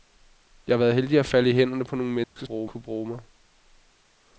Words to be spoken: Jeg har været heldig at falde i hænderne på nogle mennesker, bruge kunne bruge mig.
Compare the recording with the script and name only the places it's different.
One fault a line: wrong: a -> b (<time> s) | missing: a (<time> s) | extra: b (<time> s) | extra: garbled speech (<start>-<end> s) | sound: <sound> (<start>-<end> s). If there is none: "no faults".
sound: dropout (2.2-2.4 s)